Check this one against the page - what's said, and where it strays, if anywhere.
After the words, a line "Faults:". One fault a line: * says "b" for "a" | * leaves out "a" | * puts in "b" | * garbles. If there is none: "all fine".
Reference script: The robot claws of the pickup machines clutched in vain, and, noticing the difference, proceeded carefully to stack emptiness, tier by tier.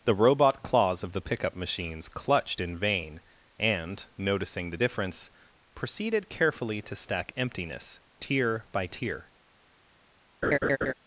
The robot claws of the pickup machines clutched in vain, and, noticing the difference, proceeded carefully to stack emptiness, tier by tier.
Faults:
all fine